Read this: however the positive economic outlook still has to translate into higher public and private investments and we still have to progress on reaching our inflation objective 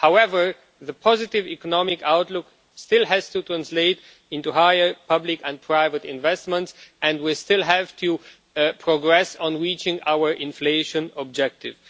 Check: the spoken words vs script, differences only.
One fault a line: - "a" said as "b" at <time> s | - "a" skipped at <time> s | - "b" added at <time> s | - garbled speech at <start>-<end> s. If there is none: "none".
none